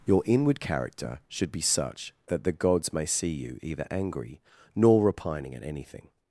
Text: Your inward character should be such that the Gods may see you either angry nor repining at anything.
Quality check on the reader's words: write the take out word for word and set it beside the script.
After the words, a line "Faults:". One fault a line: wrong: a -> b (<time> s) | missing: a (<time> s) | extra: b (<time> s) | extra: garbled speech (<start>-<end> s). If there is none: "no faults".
Your inward character should be such that the Gods may see you either angry nor repining at anything.
Faults:
no faults